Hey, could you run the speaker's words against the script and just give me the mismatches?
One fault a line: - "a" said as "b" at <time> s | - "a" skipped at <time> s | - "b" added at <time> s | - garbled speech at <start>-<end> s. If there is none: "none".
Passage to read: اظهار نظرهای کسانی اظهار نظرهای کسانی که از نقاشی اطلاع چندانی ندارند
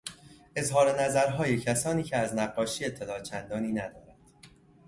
- "اظهار نظرهای کسانی" skipped at 2.0 s